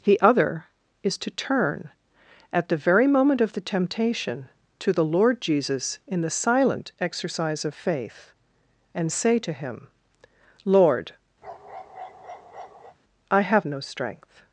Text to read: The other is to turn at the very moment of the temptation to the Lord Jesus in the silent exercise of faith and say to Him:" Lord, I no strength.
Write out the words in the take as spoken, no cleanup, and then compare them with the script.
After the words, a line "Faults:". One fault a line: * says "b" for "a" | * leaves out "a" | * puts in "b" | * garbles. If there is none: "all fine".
The other is to turn at the very moment of the temptation to the Lord Jesus in the silent exercise of faith and say to Him:" Lord, I have no strength.
Faults:
* puts in "have"